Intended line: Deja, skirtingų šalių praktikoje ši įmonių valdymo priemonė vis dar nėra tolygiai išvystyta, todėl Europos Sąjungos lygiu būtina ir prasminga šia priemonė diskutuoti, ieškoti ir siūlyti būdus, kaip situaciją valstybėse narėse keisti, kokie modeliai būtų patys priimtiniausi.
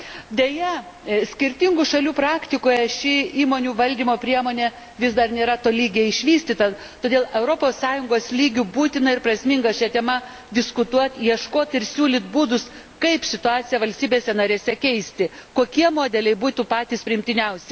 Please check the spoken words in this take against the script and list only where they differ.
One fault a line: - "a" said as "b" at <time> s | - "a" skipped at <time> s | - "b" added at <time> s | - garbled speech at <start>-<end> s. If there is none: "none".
- "priemonė" said as "tema" at 9.9 s